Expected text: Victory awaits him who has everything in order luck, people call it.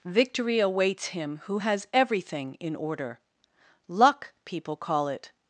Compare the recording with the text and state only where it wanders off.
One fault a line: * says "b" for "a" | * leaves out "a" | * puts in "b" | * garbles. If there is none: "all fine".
all fine